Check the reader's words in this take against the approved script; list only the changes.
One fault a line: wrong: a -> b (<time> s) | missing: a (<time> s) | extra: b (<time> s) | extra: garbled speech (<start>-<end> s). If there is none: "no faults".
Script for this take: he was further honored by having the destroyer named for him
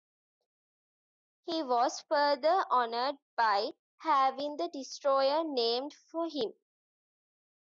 no faults